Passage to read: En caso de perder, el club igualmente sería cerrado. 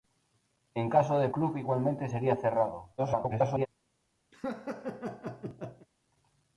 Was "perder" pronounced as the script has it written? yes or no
no